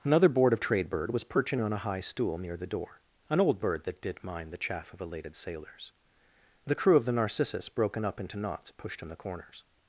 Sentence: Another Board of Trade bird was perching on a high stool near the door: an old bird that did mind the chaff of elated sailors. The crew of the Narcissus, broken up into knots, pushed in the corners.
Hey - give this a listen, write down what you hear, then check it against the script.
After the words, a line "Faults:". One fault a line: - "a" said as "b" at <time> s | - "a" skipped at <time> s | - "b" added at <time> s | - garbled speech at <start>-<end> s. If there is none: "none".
Another Board of Trade bird was perching on a high stool near the door: an old bird that did mind the chaff of elated sailors. The crew of the Narcissus, broken up into knots, pushed in the corners.
Faults:
none